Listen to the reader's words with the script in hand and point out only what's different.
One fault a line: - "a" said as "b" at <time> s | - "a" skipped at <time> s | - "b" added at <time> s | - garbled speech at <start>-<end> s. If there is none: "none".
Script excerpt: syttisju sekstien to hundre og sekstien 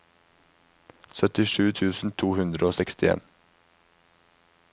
- "sekstien" said as "tusen" at 1.8 s